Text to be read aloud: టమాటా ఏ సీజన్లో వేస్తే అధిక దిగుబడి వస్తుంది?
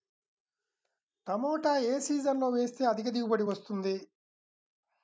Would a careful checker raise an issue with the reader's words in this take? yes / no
no